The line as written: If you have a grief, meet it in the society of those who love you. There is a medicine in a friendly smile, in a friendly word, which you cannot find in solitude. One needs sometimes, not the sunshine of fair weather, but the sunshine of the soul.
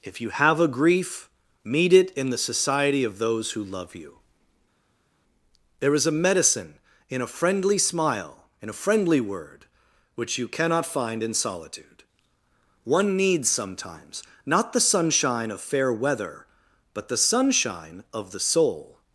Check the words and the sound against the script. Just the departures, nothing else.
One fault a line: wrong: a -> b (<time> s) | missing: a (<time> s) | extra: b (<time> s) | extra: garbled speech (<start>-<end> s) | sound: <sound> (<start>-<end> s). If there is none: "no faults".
no faults